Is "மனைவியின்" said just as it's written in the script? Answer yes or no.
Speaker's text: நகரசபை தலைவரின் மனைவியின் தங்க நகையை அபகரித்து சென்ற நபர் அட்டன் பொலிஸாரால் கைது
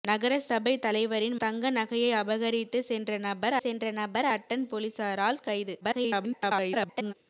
no